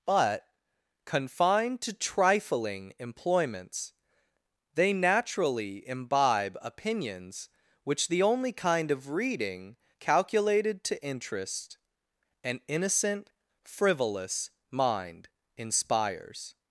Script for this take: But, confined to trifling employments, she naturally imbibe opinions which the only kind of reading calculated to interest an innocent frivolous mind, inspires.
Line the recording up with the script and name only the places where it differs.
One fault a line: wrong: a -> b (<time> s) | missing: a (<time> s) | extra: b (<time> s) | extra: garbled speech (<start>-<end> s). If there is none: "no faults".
wrong: she -> they (4.7 s)